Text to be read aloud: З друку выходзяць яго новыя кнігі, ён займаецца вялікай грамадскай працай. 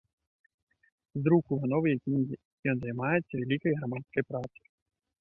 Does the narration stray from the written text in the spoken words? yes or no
yes